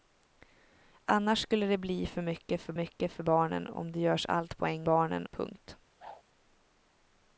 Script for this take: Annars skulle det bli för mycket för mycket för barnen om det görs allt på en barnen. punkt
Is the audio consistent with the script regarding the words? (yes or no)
yes